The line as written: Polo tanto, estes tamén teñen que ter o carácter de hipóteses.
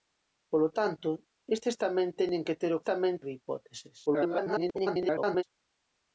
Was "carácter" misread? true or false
true